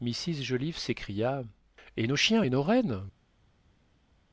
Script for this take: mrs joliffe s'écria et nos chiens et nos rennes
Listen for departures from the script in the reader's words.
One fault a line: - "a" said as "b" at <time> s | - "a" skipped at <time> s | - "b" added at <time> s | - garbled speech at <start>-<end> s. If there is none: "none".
none